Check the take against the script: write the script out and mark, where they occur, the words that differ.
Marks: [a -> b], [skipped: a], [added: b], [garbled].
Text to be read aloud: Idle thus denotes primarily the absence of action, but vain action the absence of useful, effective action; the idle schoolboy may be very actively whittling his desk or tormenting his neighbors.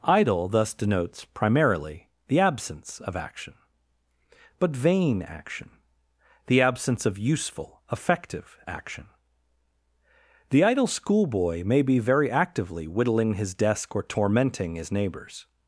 Idle thus denotes primarily the absence of action, but vain action the absence of useful, effective action; the idle schoolboy may be very actively whittling his desk or tormenting his neighbors.